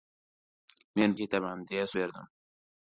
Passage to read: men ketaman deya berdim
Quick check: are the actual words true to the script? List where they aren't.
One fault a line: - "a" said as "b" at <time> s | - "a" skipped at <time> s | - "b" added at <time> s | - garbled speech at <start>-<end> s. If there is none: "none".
none